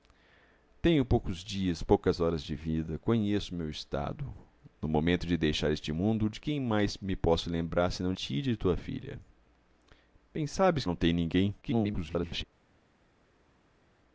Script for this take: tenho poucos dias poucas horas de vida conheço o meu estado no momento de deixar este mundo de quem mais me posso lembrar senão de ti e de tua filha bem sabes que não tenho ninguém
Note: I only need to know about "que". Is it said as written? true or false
false